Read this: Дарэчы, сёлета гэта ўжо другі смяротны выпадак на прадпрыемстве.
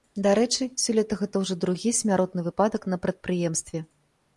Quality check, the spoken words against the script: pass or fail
pass